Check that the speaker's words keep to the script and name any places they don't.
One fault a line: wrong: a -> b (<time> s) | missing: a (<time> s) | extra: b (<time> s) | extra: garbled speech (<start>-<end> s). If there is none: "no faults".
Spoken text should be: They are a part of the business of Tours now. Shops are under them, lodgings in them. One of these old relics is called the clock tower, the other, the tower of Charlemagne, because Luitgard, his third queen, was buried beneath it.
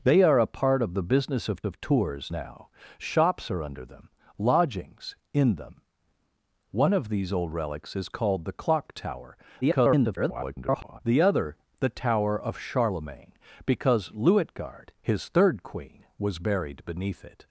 extra: of (1.6 s)
extra: garbled speech (9.6-11.0 s)